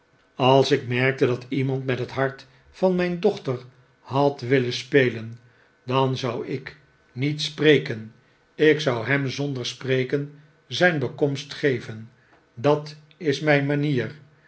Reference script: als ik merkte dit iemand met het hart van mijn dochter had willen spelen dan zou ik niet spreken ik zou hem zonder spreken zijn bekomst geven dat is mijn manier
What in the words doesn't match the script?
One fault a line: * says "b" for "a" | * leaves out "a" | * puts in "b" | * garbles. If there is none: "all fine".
* says "dat" for "dit"